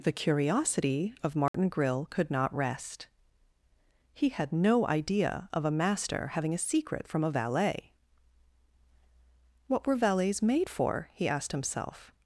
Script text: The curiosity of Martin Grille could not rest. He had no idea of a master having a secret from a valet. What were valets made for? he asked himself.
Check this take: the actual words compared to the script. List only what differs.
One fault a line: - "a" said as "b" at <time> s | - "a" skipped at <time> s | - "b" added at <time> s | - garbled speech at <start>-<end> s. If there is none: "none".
none